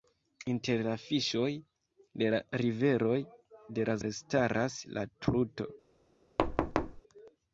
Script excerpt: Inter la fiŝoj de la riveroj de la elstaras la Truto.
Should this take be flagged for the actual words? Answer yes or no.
no